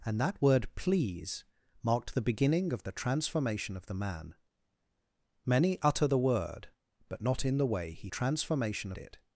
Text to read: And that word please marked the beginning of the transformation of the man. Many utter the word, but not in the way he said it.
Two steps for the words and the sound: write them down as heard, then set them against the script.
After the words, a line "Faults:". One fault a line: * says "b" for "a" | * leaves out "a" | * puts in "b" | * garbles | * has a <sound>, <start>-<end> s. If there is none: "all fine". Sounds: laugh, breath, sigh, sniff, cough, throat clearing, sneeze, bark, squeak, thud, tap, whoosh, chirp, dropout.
And that word please marked the beginning of the transformation of the man. Many utter the word, but not in the way he transformation it.
Faults:
* says "transformation" for "said"